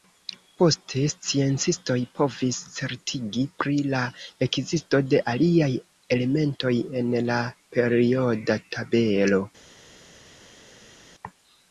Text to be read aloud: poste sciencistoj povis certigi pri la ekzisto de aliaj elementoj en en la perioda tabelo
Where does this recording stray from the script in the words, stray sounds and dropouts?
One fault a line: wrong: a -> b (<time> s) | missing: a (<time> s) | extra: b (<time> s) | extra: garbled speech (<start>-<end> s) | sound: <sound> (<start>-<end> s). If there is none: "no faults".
missing: en (7.2 s)